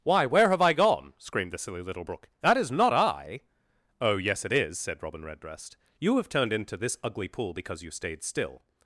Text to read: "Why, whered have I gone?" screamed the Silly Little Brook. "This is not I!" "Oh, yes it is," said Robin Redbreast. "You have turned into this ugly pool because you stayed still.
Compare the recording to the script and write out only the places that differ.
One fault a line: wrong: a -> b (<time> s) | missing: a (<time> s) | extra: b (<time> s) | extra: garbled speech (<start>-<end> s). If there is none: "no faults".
wrong: whered -> where (0.2 s)
wrong: This -> That (2.4 s)